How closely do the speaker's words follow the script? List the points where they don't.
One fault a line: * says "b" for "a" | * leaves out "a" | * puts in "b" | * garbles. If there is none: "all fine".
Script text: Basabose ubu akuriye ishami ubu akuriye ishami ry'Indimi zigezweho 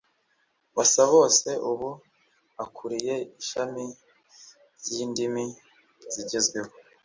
* leaves out "ubu akuriye ishami"